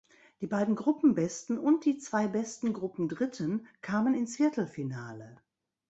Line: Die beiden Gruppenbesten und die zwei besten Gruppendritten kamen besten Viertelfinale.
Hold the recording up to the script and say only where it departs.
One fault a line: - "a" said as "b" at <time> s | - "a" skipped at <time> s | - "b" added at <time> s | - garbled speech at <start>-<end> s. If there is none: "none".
- "besten" said as "ins" at 4.2 s